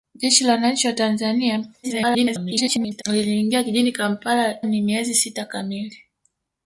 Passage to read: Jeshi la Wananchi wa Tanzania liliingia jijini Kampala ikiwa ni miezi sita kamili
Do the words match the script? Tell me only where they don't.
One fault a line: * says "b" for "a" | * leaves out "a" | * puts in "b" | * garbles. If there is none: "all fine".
* garbles
* leaves out "ikiwa"